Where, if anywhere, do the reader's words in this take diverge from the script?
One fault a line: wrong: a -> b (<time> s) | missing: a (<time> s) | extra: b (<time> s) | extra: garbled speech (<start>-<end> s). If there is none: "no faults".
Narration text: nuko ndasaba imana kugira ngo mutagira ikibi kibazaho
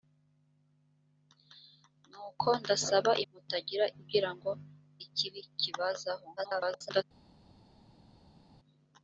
wrong: imana -> mutagira (3.3 s)
missing: mutagira (4.5 s)
extra: garbled speech (6.4-7.0 s)